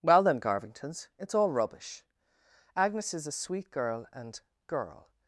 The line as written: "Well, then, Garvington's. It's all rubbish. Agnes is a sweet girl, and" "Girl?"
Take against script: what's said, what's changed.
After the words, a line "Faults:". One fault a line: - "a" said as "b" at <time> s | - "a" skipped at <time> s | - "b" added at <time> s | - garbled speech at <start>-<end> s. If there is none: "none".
"Well, then, Garvington's. It's all rubbish. Agnes is a sweet girl, and" "Girl?"
Faults:
none